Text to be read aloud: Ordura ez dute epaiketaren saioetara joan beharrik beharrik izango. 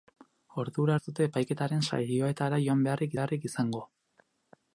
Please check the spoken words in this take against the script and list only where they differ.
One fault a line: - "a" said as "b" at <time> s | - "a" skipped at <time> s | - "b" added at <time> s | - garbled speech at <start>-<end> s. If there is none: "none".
none